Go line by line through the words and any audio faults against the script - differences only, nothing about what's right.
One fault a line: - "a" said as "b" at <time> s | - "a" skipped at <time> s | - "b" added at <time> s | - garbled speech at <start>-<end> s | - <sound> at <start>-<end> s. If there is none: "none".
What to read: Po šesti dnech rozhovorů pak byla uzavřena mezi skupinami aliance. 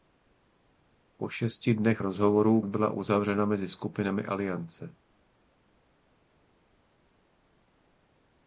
- "pak" skipped at 2.6 s